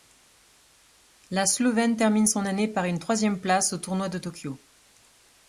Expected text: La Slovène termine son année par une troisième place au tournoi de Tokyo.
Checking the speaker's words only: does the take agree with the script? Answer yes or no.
yes